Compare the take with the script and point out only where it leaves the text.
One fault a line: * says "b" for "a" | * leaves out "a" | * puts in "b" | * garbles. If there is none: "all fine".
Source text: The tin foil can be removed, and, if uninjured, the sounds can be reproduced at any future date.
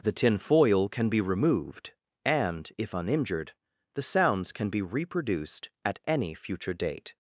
all fine